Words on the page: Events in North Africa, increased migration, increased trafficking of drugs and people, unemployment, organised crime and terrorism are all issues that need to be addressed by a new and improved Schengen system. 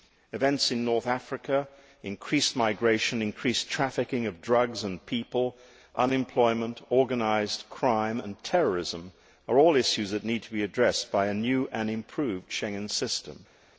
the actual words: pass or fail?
pass